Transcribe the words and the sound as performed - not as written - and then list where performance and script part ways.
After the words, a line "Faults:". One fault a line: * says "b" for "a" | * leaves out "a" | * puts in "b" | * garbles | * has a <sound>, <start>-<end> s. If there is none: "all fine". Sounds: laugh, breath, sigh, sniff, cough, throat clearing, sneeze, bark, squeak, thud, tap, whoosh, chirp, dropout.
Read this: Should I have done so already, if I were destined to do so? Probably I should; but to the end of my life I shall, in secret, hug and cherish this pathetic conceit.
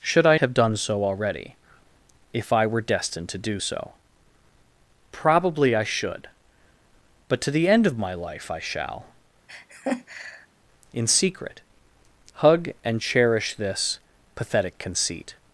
Should I have done so already, if I were destined to do so? Probably I should; but to the end of my life I shall, in secret, hug and cherish this pathetic conceit.
Faults:
* has a laugh, 9.5-10.5 s